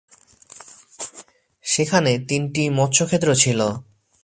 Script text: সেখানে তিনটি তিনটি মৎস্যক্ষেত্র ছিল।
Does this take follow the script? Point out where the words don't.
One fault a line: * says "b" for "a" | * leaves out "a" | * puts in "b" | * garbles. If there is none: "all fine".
* leaves out "তিনটি"